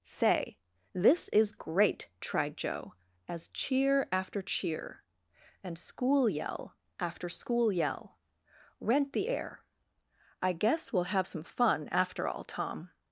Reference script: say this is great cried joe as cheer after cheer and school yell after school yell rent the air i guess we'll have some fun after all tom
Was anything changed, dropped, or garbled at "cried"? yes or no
yes